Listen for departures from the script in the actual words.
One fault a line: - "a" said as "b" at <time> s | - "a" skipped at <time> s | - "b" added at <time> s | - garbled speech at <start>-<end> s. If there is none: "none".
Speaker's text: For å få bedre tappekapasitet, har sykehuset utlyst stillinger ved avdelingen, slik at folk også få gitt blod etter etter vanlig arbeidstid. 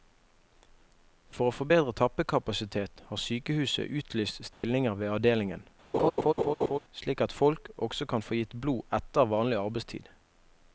- "kan" added at 8.1 s
- "etter" skipped at 9.3 s